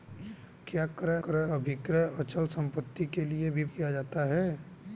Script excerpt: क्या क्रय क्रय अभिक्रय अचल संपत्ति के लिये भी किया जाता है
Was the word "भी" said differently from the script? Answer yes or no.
no